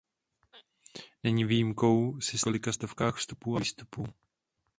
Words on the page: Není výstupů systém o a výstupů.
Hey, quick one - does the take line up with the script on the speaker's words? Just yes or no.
no